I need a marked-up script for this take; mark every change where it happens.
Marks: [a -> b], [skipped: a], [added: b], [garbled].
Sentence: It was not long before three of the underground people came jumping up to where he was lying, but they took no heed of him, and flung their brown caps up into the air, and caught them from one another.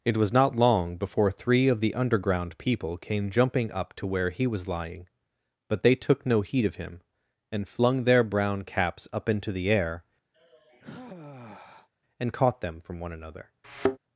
It was not long before three of the underground people came jumping up to where he was lying, but they took no heed of him, and flung their brown caps up into the air, and caught them from one another.